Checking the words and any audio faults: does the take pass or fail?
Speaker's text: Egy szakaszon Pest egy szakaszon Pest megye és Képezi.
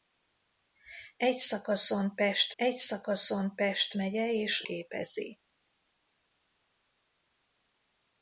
pass